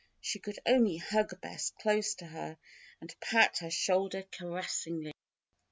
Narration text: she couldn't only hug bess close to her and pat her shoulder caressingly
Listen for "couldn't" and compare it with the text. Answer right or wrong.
wrong